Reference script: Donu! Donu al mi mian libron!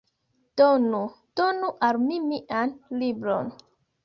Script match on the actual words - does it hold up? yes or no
yes